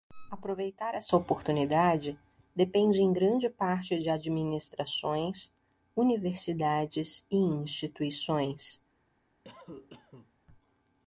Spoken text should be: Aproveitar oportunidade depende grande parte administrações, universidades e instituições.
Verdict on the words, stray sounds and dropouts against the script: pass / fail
fail